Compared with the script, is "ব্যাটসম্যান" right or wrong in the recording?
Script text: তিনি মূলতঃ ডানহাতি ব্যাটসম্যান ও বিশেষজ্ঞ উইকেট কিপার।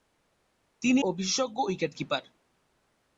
wrong